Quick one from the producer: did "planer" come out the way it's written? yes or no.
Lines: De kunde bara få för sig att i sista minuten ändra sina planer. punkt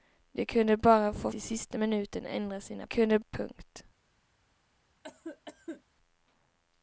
no